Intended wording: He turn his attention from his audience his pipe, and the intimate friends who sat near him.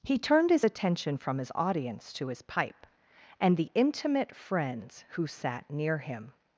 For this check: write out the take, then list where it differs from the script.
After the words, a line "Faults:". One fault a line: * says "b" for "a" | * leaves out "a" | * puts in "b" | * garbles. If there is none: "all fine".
He turned his attention from his audience to his pipe, and the intimate friends who sat near him.
Faults:
* says "turned" for "turn"
* puts in "to"